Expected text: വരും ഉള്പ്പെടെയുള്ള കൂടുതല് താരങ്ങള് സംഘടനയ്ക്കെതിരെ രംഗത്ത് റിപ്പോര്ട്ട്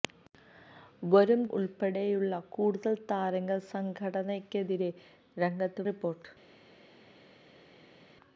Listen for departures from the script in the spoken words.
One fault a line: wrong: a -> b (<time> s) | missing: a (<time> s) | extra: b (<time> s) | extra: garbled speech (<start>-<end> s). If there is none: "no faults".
no faults